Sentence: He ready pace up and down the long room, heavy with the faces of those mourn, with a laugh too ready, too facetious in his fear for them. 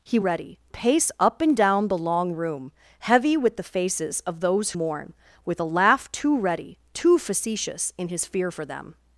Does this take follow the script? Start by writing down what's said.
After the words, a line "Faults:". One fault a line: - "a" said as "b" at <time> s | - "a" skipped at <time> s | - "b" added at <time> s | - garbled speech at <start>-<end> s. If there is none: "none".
He ready pace up and down the long room, heavy with the faces of those mourn, with a laugh too ready, too facetious in his fear for them.
Faults:
none